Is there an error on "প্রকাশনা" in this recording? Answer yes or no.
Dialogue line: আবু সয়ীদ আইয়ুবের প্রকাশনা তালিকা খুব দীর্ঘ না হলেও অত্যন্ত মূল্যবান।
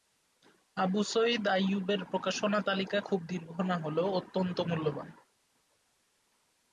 no